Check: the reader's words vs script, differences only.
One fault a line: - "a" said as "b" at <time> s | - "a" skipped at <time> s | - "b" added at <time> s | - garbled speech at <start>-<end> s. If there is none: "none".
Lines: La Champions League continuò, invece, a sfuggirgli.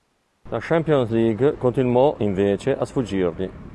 none